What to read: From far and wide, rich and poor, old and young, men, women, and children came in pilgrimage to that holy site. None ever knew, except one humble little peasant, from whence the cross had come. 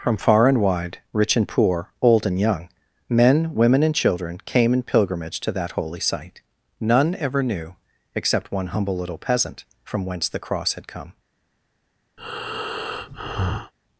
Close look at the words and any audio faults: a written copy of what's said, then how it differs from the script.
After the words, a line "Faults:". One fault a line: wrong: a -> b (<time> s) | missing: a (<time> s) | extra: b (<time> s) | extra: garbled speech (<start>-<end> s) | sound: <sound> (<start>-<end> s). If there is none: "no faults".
From far and wide, rich and poor, old and young, men, women, and children came in pilgrimage to that holy site. None ever knew, except one humble little peasant, from whence the cross had come.
Faults:
sound: breath (12.2-13.7 s)